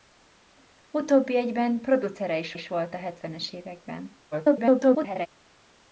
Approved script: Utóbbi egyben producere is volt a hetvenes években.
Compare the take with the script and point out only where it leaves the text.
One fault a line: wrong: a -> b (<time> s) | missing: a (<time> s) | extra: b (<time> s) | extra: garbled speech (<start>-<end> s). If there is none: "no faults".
extra: is (2.5 s)
extra: garbled speech (4.3-5.3 s)